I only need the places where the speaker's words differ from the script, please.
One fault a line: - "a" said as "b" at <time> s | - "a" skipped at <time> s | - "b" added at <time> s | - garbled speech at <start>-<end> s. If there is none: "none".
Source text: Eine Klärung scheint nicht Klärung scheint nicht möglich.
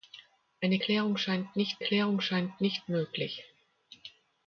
none